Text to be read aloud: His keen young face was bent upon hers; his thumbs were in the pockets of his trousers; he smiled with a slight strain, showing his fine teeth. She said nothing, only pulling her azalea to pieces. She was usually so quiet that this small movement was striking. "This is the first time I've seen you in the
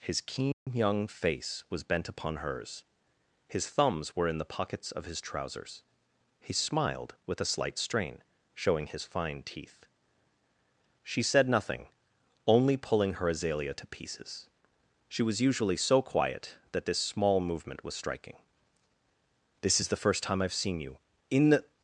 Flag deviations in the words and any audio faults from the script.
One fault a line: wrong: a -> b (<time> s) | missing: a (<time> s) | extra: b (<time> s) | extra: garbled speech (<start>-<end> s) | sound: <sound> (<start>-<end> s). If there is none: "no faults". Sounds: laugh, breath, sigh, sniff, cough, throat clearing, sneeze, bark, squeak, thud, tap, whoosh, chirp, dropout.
sound: dropout (0.5-0.7 s)